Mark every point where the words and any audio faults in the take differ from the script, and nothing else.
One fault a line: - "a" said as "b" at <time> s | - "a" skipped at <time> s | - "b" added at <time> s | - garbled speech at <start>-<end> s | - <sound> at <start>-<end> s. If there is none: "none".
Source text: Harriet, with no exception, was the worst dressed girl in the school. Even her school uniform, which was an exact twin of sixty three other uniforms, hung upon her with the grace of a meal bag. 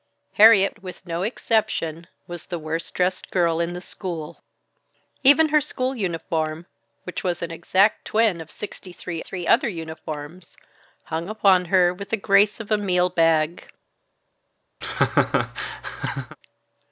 - "three" added at 9.2 s
- laugh at 14.8-16.4 s